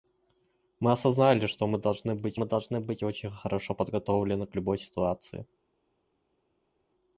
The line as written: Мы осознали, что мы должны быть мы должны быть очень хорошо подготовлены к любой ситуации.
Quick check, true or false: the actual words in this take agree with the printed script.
true